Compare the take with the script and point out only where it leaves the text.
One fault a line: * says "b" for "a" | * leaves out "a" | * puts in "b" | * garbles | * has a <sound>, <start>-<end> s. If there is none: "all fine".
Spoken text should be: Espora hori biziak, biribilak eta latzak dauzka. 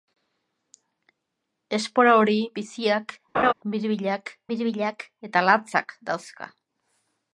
* has a laugh, 3.3-3.5 s
* puts in "biribilak"